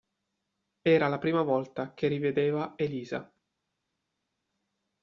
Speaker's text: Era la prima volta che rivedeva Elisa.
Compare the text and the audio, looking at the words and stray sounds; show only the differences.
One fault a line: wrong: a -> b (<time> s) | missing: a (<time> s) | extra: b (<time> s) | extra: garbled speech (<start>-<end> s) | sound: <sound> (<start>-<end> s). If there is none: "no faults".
no faults